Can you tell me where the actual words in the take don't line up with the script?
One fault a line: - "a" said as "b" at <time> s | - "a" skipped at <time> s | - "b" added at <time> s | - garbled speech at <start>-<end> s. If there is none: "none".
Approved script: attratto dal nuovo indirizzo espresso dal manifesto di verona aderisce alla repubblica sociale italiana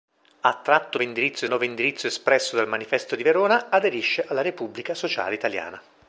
- "dal" said as "indirizzo" at 1.0 s